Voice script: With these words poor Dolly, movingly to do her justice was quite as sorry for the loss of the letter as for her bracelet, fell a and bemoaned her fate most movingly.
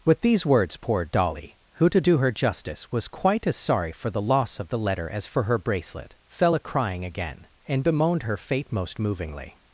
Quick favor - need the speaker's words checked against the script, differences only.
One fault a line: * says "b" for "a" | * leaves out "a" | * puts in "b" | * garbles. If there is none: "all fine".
* says "who" for "movingly"
* puts in "crying again"